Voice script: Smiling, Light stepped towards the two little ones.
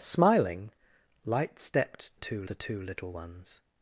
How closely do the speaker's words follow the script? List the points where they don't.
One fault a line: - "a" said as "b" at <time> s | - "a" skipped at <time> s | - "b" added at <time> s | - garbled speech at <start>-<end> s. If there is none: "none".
- "towards" said as "two" at 2.2 s